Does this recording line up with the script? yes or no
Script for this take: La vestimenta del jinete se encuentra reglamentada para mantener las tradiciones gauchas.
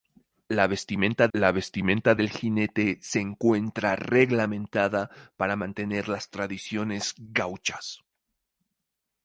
no